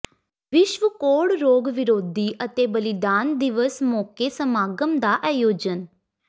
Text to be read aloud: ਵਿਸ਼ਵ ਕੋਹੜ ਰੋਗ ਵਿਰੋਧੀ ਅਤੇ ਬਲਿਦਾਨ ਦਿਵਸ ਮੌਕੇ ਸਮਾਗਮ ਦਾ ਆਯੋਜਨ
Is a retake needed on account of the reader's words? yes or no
no